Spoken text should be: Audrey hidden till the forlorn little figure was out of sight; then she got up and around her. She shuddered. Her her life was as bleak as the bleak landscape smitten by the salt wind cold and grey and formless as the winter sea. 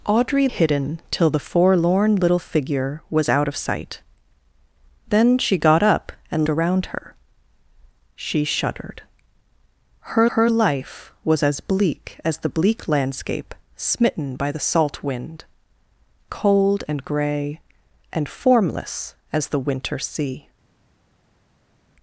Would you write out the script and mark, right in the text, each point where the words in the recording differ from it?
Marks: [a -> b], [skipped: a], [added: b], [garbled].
Audrey hidden till the forlorn little figure was out of sight; then she got up and around her. She shuddered. Her her life was as bleak as the bleak landscape smitten by the salt wind cold and grey and formless as the winter sea.